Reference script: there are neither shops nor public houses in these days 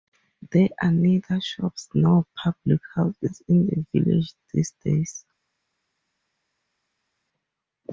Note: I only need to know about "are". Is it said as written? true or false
true